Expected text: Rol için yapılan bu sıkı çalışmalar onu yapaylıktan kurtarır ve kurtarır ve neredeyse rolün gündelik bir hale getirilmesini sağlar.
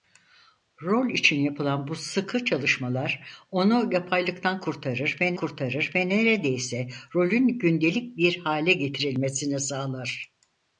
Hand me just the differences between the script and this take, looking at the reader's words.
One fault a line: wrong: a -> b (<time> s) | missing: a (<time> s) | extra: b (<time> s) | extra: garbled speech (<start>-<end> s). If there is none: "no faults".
no faults